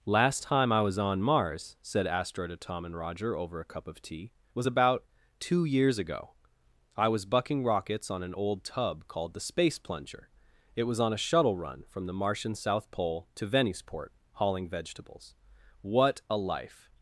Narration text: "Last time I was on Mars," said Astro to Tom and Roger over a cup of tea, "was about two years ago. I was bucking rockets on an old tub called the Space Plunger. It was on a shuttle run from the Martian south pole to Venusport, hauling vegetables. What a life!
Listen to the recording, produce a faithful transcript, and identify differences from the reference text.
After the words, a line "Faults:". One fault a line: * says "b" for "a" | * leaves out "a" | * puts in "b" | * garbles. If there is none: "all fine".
"Last time I was on Mars," said Astro to Tom and Roger over a cup of tea, "was about two years ago. I was bucking rockets on an old tub called the Space Plunger. It was on a shuttle run from the Martian south pole to Venusport, hauling vegetables. What a life!
Faults:
all fine